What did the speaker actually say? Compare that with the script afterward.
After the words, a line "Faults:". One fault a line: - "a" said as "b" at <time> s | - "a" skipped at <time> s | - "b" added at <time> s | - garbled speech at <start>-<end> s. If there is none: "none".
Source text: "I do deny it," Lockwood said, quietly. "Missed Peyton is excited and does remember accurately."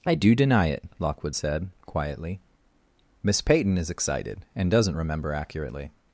"I do deny it," Lockwood said, quietly. "Miss Peyton is excited and doesn't remember accurately."
Faults:
- "Missed" said as "Miss" at 3.2 s
- "does" said as "doesn't" at 4.7 s